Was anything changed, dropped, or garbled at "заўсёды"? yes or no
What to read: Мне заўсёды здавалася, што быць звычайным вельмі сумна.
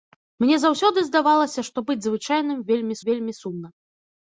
no